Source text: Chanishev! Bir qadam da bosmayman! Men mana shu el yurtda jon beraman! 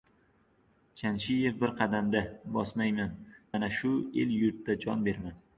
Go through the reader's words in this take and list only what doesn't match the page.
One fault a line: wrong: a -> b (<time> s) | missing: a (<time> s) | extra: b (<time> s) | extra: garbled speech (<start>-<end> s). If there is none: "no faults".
missing: Men (3.1 s)